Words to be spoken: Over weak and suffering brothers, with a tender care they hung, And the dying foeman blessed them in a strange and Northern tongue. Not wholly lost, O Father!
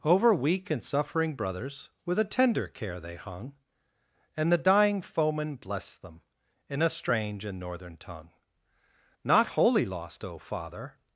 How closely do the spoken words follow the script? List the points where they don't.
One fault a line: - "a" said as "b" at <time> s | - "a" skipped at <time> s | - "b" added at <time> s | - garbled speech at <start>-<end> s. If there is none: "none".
none